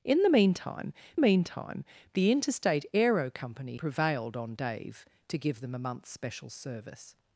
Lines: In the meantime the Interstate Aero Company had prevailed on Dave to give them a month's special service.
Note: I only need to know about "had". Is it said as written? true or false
false